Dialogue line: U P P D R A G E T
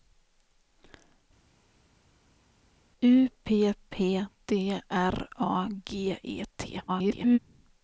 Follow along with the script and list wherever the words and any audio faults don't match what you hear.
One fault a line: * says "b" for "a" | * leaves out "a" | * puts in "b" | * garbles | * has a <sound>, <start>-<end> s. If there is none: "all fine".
* garbles